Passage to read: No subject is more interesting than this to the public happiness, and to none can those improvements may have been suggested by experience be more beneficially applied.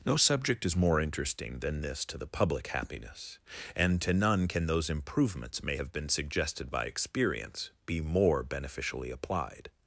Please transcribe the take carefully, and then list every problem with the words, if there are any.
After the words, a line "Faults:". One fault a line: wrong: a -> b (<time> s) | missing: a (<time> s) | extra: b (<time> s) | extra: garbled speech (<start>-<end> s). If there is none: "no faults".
No subject is more interesting than this to the public happiness, and to none can those improvements may have been suggested by experience be more beneficially applied.
Faults:
no faults